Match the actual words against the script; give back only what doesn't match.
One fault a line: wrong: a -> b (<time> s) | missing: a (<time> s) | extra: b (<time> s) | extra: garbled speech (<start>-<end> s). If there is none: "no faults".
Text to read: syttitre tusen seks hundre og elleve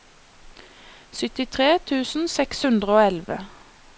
no faults